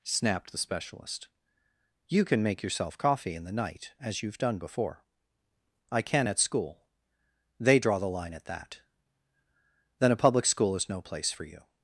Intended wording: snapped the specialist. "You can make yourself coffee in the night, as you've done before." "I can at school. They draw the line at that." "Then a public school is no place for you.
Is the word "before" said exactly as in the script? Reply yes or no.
yes